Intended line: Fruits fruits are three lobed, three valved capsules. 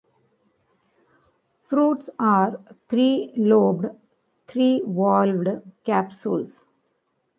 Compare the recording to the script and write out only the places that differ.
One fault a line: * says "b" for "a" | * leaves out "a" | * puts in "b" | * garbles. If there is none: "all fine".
* leaves out "fruits"